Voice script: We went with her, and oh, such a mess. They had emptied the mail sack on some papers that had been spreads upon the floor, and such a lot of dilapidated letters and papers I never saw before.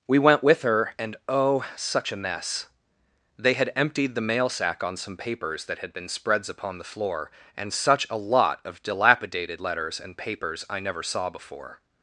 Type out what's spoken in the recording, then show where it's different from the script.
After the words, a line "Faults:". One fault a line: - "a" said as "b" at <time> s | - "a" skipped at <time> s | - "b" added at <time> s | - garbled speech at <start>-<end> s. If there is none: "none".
We went with her, and oh, such a mess. They had emptied the mail sack on some papers that had been spreads upon the floor, and such a lot of dilapidated letters and papers I never saw before.
Faults:
none